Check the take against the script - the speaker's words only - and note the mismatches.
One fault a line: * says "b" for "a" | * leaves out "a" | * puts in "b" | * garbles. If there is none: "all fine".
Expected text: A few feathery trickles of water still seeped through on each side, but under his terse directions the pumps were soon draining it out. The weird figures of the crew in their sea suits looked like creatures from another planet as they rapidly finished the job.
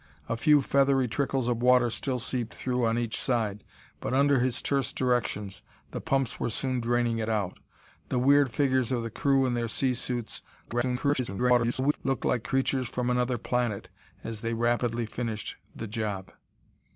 * garbles